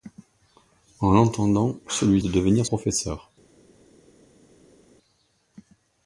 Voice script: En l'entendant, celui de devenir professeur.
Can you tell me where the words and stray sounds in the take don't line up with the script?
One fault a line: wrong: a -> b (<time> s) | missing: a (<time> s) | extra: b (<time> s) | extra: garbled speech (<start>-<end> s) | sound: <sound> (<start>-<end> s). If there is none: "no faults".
no faults